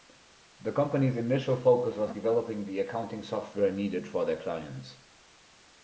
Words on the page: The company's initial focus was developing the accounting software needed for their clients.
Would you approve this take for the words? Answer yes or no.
yes